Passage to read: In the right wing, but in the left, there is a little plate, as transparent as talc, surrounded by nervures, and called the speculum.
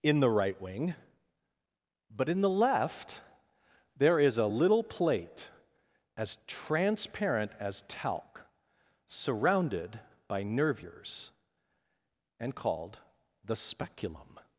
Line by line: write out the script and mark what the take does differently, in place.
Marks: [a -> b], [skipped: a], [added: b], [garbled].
In the right wing, but in the left, there is a little plate, as transparent as talc, surrounded by nervures, and called the speculum.